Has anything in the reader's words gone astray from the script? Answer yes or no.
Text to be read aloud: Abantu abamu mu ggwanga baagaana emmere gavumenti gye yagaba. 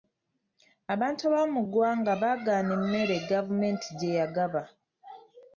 no